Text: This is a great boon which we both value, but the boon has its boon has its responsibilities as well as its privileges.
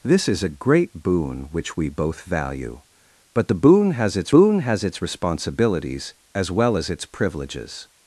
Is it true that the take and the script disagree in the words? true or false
false